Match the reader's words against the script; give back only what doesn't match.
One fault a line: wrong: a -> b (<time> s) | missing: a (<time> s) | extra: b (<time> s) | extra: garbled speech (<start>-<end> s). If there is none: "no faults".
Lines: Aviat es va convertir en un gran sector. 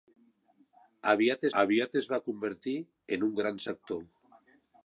extra: aviat (1.6 s)